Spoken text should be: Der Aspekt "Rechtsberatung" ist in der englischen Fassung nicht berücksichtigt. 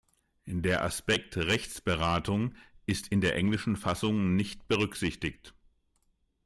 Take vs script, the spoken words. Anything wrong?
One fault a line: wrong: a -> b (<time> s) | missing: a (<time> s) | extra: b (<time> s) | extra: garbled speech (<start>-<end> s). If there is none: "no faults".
no faults